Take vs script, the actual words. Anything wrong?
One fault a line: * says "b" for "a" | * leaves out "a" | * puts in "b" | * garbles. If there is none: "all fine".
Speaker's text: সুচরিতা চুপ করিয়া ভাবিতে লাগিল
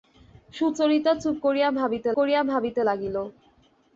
* puts in "করিয়া ভাবিতে"